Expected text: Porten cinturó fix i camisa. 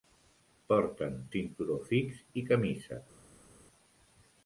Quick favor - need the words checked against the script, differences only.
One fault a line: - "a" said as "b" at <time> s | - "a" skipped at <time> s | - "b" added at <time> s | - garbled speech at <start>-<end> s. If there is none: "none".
none